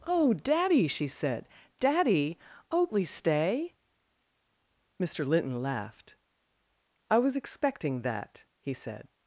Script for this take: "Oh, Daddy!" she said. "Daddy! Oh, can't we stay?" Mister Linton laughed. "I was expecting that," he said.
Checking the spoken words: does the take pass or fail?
fail